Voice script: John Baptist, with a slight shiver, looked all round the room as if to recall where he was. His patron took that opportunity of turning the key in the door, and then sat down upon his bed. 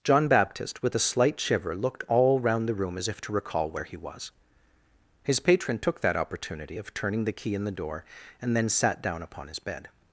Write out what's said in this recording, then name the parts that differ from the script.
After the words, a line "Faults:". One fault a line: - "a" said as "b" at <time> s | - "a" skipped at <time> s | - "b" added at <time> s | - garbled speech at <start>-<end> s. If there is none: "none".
John Baptist, with a slight shiver, looked all round the room as if to recall where he was. His patron took that opportunity of turning the key in the door, and then sat down upon his bed.
Faults:
none